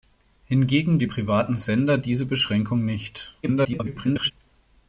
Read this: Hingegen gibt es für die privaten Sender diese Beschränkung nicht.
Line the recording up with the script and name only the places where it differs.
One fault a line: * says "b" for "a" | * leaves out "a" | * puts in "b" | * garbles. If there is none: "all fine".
* leaves out "gibt es für"
* garbles